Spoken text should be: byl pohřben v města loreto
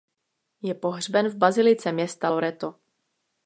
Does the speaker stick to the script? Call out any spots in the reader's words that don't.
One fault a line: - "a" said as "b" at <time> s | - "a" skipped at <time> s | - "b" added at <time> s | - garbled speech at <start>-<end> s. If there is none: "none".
- "byl" said as "je" at 0.6 s
- "bazilice" added at 1.4 s